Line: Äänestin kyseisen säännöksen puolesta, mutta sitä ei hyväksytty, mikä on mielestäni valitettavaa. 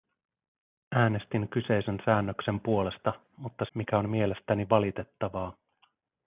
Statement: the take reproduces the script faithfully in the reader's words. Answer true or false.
false